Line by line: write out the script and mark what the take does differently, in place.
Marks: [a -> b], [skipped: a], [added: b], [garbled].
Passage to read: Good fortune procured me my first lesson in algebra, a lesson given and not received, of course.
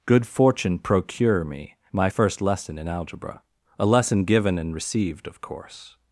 Good fortune [procured -> procure] me my first lesson in algebra, a lesson given and [skipped: not] received, of course.